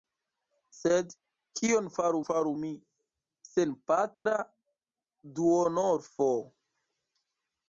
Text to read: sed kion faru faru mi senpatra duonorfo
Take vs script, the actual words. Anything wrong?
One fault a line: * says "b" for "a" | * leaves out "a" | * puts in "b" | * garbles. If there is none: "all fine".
all fine